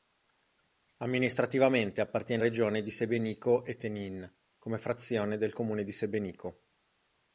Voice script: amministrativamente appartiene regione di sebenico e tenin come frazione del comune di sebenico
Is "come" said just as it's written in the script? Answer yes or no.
yes